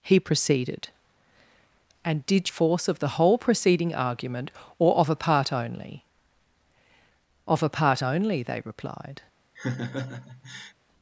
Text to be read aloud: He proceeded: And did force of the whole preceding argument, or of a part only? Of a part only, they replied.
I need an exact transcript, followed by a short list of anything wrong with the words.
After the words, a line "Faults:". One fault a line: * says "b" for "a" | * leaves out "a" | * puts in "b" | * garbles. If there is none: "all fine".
He proceeded: And did force of the whole preceding argument, or of a part only? Of a part only, they replied.
Faults:
all fine